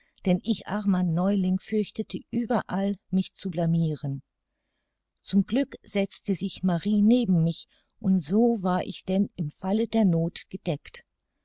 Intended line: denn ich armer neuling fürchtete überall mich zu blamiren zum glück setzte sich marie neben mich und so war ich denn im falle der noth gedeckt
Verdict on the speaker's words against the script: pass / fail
pass